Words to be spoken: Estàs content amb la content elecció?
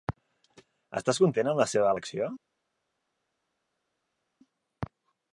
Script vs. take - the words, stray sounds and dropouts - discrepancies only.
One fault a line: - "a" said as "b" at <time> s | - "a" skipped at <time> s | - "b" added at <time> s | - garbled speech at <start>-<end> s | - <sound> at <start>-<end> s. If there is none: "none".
- "content" said as "seva" at 1.8 s